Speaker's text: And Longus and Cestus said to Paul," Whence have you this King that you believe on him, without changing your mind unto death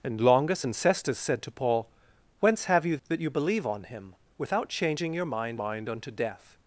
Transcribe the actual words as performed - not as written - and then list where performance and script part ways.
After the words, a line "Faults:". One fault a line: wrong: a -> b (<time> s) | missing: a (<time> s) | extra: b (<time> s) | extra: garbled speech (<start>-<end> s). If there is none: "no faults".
And Longus and Cestus said to Paul," Whence have you that you believe on him, without changing your mind mind unto death
Faults:
missing: this King (3.0 s)
extra: mind (5.5 s)